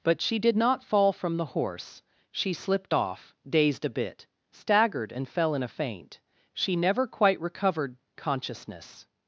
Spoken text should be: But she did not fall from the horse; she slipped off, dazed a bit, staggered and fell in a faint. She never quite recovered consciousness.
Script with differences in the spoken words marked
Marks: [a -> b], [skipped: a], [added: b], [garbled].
But she did not fall from the horse; she slipped off, dazed a bit, staggered and fell in a faint. She never quite recovered consciousness.